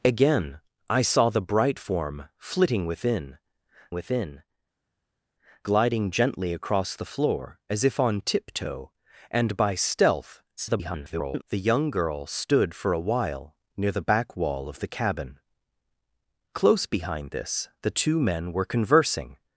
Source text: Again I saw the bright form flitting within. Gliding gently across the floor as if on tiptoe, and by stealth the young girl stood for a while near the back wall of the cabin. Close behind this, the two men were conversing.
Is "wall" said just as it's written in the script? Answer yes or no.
yes